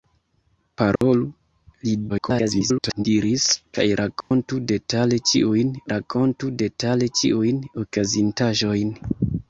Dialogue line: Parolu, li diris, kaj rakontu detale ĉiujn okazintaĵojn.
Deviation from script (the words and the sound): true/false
true